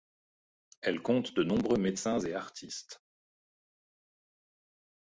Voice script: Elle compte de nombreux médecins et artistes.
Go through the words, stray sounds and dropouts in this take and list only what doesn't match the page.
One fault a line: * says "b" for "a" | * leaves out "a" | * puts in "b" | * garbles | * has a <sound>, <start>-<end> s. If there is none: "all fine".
all fine